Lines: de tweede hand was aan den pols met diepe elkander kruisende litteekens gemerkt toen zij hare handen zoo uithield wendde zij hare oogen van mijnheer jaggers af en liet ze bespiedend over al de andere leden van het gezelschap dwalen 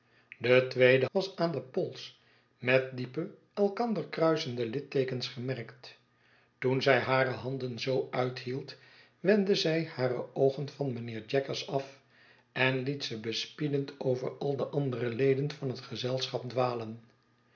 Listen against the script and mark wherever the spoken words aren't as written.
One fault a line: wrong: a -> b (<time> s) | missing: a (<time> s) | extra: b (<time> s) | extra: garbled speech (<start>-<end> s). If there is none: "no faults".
missing: hand (1.1 s)